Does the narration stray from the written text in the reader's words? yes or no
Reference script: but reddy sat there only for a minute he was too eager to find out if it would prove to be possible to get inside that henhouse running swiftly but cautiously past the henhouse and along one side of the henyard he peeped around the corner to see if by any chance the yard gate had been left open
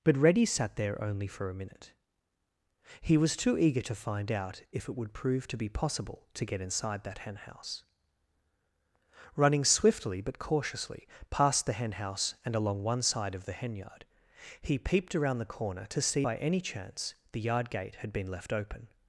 yes